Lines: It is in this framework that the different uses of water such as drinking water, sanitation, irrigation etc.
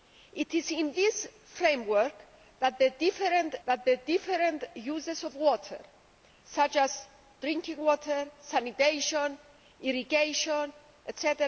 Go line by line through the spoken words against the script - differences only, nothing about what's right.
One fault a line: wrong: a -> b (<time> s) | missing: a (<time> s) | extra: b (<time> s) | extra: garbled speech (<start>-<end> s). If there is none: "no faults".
extra: that the different (3.6 s)